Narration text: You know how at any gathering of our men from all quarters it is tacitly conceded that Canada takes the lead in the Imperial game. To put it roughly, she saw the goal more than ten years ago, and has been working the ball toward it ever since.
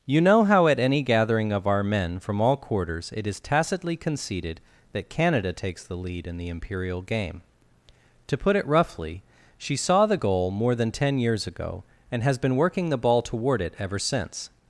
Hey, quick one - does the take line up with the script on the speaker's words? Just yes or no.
yes